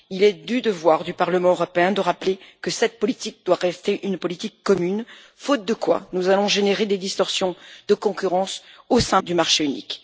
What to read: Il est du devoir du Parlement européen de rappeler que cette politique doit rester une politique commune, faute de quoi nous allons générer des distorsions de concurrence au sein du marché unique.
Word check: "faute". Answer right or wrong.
right